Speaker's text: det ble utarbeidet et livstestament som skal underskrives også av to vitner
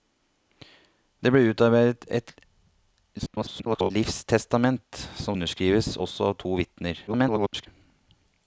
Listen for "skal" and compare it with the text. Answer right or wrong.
wrong